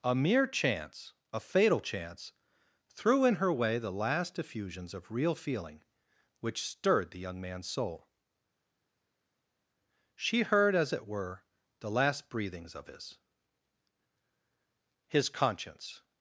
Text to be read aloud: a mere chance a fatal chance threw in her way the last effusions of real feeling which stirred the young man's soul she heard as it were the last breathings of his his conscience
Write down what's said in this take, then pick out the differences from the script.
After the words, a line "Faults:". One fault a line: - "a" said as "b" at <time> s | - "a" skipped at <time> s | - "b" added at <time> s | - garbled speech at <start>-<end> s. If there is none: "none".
a mere chance a fatal chance threw in her way the last effusions of real feeling which stirred the young man's soul she heard as it were the last breathings of his his conscience
Faults:
none